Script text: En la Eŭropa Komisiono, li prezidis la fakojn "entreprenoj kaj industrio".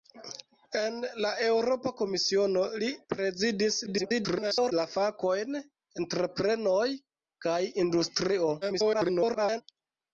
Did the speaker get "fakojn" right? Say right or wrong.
right